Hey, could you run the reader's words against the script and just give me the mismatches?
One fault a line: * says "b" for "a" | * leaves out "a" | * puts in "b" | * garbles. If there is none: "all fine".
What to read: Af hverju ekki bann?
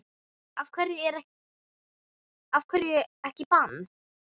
all fine